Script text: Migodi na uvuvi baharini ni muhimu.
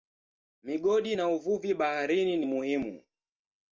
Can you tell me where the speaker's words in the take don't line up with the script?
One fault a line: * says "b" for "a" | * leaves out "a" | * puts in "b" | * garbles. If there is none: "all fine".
all fine